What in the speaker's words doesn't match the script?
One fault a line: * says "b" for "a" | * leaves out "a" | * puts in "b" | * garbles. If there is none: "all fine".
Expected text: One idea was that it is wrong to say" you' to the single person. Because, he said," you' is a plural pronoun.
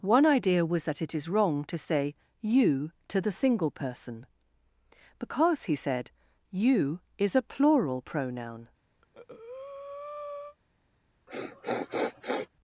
all fine